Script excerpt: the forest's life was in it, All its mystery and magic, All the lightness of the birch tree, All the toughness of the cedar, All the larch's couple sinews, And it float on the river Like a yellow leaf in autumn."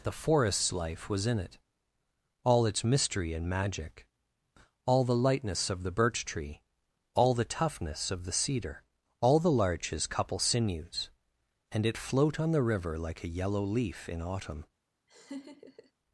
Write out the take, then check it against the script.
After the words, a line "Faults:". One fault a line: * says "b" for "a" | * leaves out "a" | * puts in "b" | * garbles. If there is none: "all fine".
the forest's life was in it, All its mystery and magic, All the lightness of the birch tree, All the toughness of the cedar, All the larch's couple sinews, And it float on the river Like a yellow leaf in autumn."
Faults:
all fine